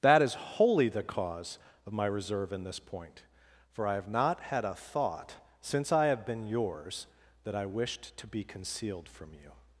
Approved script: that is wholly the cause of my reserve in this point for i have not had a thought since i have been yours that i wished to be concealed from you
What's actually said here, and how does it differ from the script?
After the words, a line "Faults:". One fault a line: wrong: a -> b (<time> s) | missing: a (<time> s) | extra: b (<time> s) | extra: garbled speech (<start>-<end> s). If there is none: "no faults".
that is wholly the cause of my reserve in this point for i have not had a thought since i have been yours that i wished to be concealed from you
Faults:
no faults